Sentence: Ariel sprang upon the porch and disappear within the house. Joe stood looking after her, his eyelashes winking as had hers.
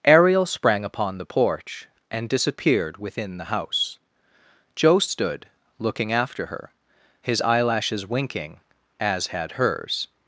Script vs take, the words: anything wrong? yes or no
yes